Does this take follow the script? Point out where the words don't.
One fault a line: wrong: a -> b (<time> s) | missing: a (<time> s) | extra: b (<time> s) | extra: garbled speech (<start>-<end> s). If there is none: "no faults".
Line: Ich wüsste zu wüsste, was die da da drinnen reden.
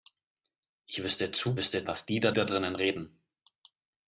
no faults